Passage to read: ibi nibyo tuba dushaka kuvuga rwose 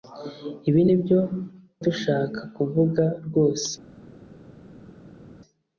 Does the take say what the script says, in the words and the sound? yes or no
no